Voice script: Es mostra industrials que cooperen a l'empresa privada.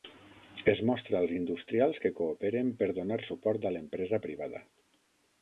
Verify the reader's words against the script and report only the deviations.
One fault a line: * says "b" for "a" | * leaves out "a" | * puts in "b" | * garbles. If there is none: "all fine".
* puts in "als"
* puts in "per donar suport"